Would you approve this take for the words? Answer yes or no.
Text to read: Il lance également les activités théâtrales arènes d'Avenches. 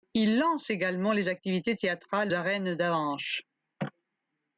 yes